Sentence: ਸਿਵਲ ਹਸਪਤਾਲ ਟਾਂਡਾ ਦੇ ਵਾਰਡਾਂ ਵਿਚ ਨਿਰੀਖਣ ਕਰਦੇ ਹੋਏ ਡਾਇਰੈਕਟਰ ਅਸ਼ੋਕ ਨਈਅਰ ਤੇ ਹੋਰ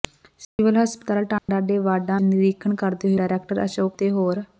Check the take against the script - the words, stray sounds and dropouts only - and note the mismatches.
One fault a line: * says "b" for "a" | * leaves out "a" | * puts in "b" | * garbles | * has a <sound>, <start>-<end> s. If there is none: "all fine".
* has a dropout, 0.4-0.6 s
* has a dropout, 1.4-1.5 s
* leaves out "ਵਿਚ"
* leaves out "ਹੋਏ"
* leaves out "ਨਈਅਰ"